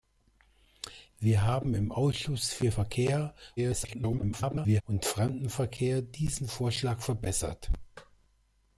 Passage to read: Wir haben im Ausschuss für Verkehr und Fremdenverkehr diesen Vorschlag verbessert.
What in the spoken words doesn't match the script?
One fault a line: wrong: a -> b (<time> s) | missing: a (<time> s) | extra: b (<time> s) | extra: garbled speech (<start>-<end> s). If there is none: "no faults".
extra: garbled speech (3.6-4.8 s)